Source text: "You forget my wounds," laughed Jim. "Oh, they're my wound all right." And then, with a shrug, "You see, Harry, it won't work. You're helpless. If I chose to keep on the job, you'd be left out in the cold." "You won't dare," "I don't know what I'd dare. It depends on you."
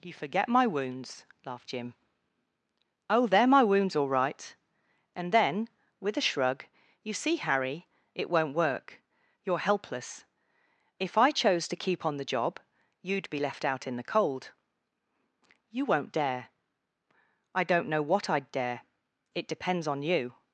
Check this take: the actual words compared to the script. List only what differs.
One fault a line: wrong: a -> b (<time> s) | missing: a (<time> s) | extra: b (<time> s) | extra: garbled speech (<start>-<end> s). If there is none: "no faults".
wrong: wound -> wounds (3.6 s)